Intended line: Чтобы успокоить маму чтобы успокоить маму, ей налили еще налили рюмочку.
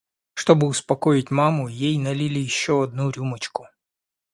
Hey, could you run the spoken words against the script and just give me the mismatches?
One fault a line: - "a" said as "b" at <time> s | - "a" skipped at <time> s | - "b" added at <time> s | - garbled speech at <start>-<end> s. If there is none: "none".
- "чтобы успокоить маму" skipped at 1.7 s
- "налили" said as "одну" at 2.8 s